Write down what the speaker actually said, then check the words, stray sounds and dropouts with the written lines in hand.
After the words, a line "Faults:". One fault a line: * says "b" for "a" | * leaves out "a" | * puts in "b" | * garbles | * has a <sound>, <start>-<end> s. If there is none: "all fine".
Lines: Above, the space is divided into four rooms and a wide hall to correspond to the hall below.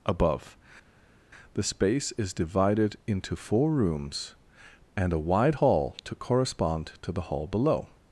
Above, the space is divided into four rooms and a wide hall to correspond to the hall below.
Faults:
all fine